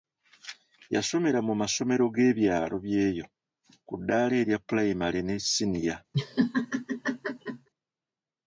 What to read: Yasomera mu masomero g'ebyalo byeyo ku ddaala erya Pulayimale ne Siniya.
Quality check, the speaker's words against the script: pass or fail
pass